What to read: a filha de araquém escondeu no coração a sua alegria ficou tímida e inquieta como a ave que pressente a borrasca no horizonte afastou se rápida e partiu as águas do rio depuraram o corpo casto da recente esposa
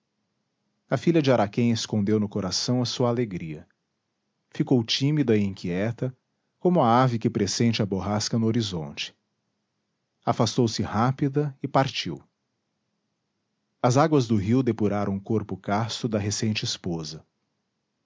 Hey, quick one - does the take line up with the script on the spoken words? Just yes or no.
yes